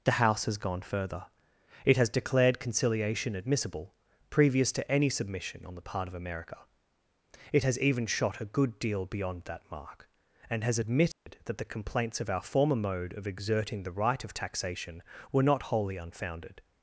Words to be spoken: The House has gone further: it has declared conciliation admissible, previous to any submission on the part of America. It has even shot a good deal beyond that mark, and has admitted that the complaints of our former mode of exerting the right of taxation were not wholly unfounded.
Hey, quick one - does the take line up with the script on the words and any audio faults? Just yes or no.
no